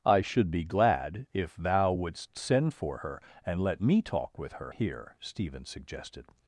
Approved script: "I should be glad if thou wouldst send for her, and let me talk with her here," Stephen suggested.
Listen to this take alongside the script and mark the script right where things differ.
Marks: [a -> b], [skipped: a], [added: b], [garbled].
"I should be glad if thou wouldst send for her, and let me talk with her here," Stephen suggested.